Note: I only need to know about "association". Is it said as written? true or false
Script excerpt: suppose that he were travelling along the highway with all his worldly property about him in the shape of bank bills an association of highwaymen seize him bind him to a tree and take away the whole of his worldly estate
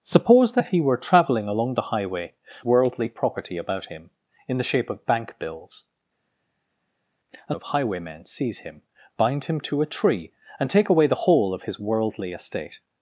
false